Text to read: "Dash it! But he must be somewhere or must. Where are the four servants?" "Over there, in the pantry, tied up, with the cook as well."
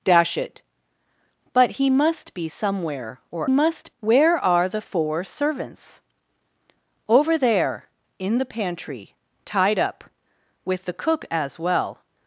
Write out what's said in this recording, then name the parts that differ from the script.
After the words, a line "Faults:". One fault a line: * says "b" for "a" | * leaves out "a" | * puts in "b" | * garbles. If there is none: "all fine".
"Dash it! But he must be somewhere or must. Where are the four servants?" "Over there, in the pantry, tied up, with the cook as well."
Faults:
all fine